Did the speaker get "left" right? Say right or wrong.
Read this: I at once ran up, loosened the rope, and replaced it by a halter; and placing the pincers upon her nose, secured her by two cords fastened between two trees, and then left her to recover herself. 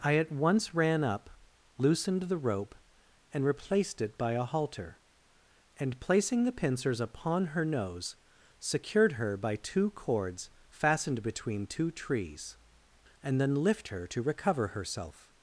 wrong